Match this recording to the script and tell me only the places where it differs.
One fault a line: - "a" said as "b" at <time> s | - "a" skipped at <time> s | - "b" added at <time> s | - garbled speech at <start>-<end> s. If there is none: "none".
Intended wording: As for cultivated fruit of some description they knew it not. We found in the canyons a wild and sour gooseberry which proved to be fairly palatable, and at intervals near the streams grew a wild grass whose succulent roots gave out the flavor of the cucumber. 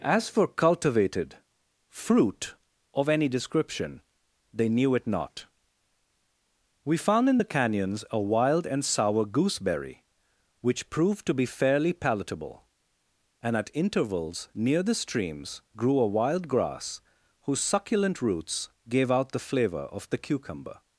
- "some" said as "any" at 3.1 s